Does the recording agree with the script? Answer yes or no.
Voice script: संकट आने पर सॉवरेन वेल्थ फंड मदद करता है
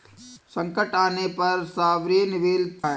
no